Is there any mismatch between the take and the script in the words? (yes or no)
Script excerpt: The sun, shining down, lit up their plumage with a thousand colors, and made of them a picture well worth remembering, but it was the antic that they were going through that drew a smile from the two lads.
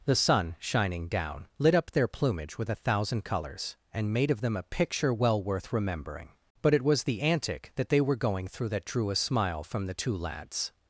no